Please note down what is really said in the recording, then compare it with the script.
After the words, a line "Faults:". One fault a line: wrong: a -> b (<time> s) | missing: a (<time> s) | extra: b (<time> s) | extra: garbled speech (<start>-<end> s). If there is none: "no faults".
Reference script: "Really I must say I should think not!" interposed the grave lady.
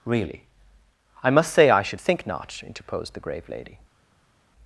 "Really I must say I should think not!" interposed the grave lady.
Faults:
no faults